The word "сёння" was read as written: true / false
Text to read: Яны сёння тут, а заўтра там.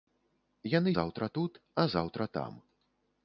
false